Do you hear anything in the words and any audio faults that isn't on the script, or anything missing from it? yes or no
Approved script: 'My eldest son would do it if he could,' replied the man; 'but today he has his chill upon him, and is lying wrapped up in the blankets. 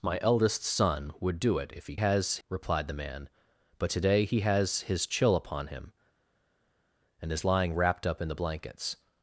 yes